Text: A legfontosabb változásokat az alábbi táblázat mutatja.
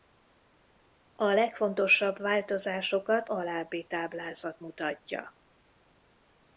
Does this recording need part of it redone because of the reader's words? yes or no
yes